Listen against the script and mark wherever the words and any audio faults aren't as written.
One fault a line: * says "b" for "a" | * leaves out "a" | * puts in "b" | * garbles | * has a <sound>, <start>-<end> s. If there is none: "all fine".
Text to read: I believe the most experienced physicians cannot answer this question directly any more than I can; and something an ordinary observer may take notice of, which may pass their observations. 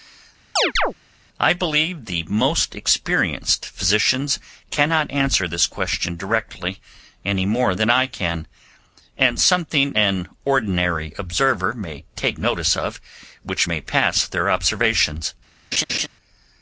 * has a chirp, 0.6-0.9 s
* has a laugh, 15.7-16.1 s